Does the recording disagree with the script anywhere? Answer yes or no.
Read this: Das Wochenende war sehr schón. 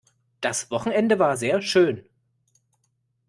no